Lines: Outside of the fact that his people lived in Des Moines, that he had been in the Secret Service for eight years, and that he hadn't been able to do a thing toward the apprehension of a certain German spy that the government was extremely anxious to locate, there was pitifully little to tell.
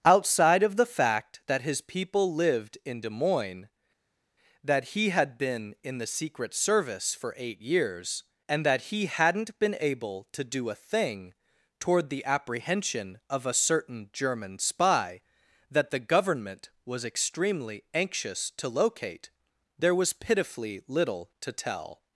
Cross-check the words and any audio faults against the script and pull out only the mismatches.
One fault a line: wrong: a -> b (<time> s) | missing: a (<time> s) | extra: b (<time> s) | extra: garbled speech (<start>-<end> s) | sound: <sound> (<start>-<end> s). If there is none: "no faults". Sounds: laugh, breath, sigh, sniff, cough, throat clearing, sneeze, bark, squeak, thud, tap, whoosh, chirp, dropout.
no faults